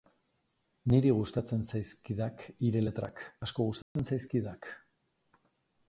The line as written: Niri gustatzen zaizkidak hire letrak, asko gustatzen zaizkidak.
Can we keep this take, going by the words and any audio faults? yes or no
no